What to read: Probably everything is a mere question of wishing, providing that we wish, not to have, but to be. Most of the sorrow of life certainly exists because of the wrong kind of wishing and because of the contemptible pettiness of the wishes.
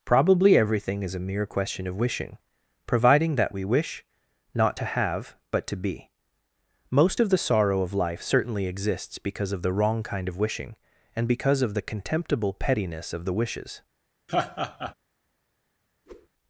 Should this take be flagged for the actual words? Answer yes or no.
no